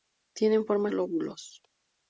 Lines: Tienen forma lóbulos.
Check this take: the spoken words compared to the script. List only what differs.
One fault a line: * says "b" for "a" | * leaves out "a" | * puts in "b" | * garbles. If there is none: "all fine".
all fine